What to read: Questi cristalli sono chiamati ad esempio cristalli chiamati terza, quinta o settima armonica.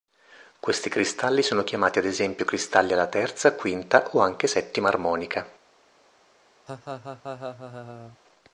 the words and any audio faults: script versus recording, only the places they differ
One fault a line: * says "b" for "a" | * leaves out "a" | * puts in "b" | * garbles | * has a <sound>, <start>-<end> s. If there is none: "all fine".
* says "alla" for "chiamati"
* puts in "anche"
* has a laugh, 6.7-8.2 s